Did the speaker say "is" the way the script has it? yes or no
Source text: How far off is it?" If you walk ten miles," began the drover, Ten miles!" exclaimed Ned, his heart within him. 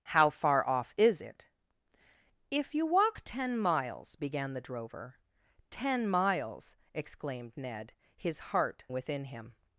yes